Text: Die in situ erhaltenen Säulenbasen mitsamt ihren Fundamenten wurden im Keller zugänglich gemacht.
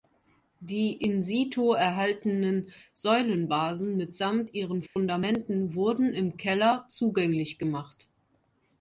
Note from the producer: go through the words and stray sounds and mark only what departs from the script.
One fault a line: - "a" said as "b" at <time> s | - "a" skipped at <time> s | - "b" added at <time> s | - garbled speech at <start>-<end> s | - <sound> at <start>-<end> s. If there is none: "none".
- dropout at 4.9-5.0 s